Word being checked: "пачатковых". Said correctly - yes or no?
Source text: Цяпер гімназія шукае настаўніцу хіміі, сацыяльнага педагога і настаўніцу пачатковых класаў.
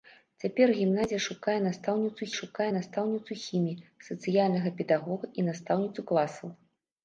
no